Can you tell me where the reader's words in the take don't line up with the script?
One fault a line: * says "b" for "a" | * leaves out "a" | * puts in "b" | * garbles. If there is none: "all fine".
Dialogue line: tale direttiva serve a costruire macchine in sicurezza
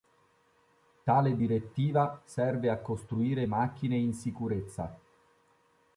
all fine